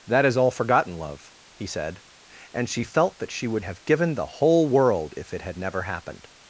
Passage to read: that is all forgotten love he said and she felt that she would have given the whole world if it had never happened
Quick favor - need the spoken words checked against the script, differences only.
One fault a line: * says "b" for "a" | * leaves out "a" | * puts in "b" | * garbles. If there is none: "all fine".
all fine